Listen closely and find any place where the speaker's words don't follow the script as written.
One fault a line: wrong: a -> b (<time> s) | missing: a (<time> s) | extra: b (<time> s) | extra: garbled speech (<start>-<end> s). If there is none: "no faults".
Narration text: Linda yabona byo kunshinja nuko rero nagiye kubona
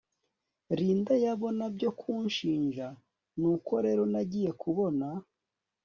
no faults